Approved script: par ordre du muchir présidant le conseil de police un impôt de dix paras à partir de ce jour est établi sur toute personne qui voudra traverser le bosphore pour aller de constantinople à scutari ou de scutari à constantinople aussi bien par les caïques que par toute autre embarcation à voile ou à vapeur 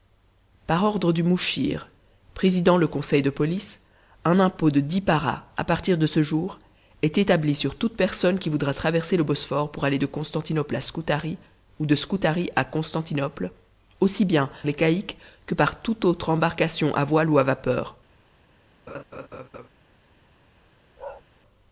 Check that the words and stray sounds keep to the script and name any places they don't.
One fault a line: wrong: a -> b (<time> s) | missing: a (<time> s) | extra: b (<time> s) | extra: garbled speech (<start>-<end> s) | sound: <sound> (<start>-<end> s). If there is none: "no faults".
missing: par (14.5 s)
sound: laugh (18.9-19.7 s)
sound: bark (21.0-21.2 s)